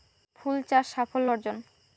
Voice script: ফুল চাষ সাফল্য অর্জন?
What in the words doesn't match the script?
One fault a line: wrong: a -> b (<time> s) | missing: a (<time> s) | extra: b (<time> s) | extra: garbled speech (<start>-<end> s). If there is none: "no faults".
no faults